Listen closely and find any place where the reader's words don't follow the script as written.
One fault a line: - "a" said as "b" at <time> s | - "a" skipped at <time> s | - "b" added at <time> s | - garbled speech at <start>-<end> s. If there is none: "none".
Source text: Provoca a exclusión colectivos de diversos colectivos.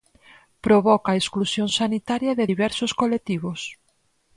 - "colectivos" said as "sanitaria" at 1.8 s